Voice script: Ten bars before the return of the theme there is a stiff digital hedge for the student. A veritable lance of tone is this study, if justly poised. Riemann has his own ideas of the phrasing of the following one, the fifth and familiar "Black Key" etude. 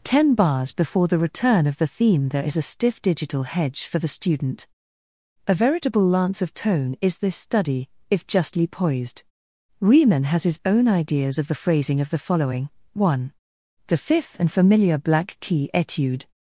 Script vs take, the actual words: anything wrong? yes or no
no